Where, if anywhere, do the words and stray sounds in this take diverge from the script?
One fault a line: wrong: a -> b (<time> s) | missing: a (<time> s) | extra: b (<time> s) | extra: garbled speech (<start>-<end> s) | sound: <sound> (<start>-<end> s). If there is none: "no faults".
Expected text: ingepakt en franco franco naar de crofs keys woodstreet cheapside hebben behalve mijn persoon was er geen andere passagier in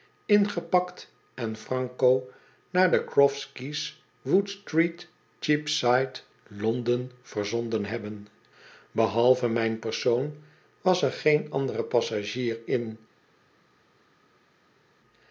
missing: franco (2.3 s)
extra: londen verzonden (6.5 s)